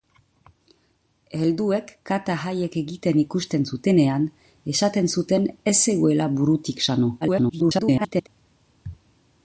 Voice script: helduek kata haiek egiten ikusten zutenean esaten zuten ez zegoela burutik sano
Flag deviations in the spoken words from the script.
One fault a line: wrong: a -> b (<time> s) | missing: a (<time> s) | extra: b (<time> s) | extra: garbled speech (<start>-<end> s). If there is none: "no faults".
extra: garbled speech (7.2-8.3 s)